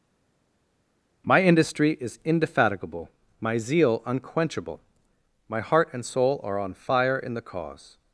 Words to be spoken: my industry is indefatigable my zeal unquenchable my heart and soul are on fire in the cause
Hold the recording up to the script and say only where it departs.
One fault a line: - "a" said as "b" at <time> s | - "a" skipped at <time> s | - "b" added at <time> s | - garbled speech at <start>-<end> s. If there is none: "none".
none